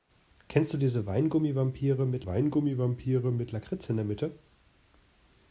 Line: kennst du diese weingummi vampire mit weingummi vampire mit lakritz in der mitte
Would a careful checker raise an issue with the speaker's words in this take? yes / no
no